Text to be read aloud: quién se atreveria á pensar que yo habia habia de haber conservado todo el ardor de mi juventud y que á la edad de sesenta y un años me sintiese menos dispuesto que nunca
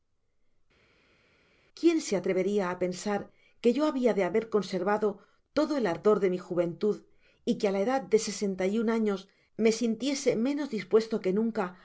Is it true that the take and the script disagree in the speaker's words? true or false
true